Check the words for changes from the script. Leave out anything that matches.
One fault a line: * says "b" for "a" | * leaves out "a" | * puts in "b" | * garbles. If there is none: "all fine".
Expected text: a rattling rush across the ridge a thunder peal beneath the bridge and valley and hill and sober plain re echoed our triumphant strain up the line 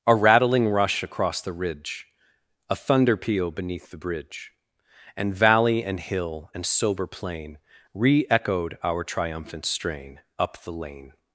* says "lane" for "line"